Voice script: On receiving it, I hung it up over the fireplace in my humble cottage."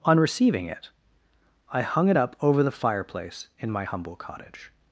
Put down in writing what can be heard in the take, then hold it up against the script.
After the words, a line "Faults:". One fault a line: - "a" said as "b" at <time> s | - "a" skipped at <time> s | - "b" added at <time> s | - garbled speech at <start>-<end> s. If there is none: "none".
On receiving it, I hung it up over the fireplace in my humble cottage."
Faults:
none